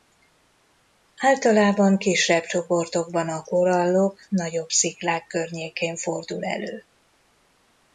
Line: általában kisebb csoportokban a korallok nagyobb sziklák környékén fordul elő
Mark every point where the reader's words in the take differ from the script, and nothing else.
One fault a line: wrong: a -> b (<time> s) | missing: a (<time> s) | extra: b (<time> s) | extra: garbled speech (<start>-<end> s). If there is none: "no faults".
no faults